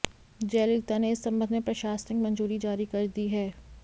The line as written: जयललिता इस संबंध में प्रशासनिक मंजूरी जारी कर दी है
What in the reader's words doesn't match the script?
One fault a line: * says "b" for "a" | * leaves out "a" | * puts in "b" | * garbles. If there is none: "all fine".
* puts in "ने"